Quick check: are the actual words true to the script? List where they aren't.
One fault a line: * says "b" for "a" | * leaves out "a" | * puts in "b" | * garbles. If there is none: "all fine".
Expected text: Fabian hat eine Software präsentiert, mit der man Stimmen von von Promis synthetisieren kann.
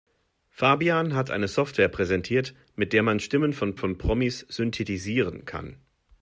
all fine